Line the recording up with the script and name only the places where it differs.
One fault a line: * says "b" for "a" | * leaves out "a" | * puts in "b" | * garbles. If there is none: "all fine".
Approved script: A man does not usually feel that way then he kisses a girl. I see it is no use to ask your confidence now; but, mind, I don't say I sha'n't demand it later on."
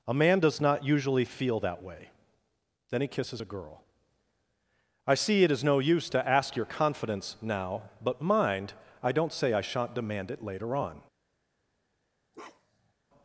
all fine